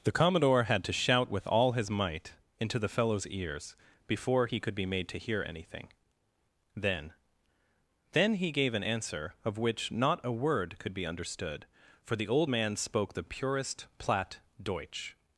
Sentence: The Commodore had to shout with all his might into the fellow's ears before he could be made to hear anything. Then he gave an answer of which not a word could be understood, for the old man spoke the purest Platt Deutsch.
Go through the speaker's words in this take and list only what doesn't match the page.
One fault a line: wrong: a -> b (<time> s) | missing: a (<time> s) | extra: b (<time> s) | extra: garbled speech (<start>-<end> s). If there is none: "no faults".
extra: Then (8.1 s)